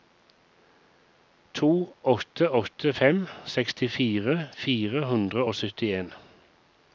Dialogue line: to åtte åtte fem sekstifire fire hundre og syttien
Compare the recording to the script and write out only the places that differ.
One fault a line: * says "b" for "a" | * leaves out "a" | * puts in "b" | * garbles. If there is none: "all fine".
all fine